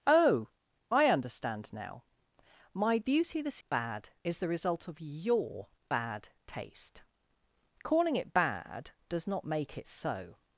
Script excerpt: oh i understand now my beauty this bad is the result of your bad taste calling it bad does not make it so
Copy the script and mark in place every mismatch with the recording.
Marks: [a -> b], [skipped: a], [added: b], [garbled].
oh i understand now my beauty this bad is the result of your bad taste calling it bad does not make it so